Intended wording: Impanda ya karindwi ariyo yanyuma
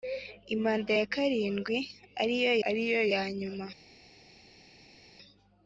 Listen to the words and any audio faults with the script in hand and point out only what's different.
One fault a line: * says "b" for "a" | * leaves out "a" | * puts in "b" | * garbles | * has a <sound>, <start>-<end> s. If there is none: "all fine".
* puts in "ariyo"